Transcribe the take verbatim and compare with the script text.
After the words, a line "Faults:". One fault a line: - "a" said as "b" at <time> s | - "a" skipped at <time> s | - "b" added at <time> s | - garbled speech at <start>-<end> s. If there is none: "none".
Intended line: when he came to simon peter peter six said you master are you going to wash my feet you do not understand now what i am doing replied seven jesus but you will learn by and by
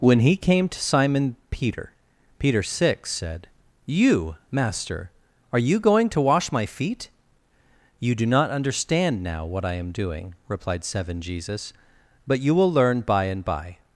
when he came to simon peter peter six said you master are you going to wash my feet you do not understand now what i am doing replied seven jesus but you will learn by and by
Faults:
none